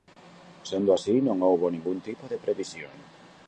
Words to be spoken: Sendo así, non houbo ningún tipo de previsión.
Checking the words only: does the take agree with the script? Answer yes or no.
yes